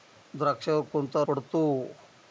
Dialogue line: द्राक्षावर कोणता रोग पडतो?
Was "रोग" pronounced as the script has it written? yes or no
no